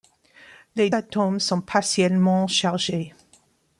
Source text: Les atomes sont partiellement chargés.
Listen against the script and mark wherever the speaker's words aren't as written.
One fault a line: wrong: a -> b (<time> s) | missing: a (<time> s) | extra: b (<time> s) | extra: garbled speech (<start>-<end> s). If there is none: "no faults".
no faults